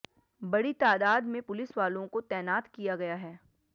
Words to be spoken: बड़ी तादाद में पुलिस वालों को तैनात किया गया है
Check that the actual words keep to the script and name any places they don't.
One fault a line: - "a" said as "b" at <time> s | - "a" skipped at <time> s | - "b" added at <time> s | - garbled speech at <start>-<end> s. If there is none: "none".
none